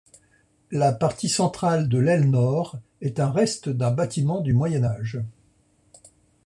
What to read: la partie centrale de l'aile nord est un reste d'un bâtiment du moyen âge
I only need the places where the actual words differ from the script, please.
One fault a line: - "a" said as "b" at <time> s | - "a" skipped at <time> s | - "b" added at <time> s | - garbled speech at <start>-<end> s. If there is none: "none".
none